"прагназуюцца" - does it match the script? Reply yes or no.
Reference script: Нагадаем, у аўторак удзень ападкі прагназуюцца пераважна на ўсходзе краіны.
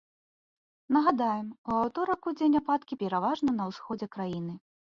no